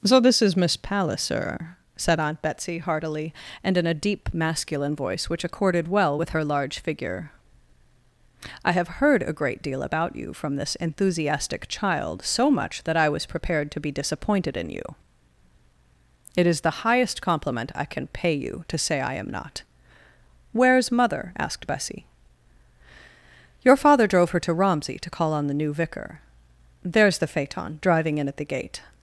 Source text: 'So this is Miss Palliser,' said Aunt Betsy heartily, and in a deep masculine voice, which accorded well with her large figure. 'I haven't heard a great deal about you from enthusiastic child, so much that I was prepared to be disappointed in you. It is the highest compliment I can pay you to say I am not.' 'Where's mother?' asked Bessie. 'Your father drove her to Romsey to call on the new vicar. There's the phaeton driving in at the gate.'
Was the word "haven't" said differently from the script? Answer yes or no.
yes